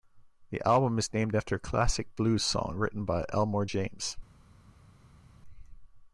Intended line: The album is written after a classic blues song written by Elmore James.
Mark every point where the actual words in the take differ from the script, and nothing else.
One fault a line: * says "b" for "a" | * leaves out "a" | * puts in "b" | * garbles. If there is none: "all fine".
* says "named" for "written"